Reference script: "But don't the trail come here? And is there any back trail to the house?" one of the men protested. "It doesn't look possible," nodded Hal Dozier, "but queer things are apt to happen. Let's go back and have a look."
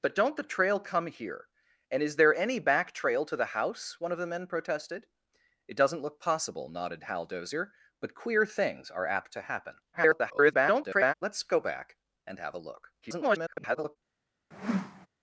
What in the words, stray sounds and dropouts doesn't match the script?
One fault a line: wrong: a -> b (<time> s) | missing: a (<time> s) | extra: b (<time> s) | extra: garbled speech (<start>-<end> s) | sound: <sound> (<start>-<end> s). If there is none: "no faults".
extra: garbled speech (9.9-11.1 s)
extra: garbled speech (13.0-14.0 s)
sound: whoosh (14.5-15.1 s)